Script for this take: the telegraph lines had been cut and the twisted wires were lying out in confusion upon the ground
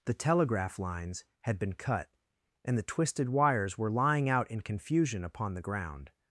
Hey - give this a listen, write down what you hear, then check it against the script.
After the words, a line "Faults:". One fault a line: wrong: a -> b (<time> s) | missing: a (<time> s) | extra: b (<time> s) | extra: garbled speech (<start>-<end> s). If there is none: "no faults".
the telegraph lines had been cut and the twisted wires were lying out in confusion upon the ground
Faults:
no faults